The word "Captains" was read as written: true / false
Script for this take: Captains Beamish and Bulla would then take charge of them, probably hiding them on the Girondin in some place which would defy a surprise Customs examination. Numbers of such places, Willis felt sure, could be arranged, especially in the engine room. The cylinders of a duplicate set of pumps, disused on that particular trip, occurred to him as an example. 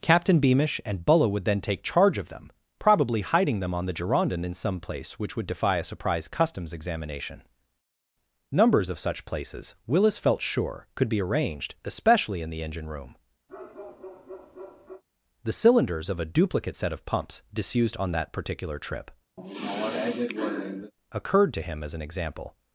false